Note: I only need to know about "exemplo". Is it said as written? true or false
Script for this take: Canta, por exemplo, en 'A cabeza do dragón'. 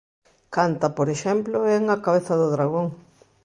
true